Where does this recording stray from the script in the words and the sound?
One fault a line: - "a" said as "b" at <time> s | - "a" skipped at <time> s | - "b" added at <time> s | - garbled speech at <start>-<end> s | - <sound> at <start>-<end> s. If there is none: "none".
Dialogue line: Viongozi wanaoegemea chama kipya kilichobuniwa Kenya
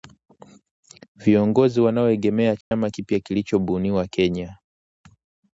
- dropout at 2.6-2.7 s